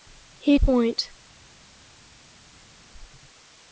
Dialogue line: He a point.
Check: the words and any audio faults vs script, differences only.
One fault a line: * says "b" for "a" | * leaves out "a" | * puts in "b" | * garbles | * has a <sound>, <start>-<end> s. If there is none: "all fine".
all fine